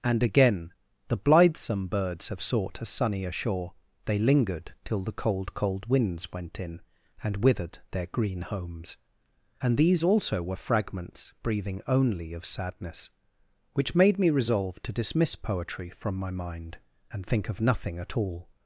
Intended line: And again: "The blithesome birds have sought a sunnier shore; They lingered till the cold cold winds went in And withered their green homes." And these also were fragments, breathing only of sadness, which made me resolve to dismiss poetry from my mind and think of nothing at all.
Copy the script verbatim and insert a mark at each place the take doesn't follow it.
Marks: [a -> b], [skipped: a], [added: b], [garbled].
And again: "The blithesome birds have sought a sunnier shore; They lingered till the cold cold winds went in And withered their green homes." And these also were fragments, breathing only of sadness, which made me resolve to dismiss poetry from my mind and think of nothing at all.